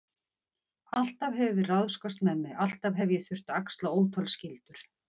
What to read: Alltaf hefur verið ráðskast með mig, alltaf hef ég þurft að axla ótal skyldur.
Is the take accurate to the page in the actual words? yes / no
yes